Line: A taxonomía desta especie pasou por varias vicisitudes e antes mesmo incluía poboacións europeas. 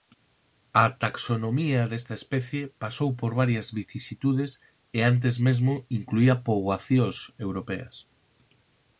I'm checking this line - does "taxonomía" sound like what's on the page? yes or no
yes